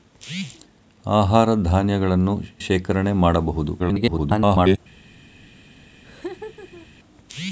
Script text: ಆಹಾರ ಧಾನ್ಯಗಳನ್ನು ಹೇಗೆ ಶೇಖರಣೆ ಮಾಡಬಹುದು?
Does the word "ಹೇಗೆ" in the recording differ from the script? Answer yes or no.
yes